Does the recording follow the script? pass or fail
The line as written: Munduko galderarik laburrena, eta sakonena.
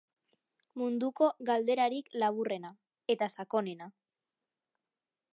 pass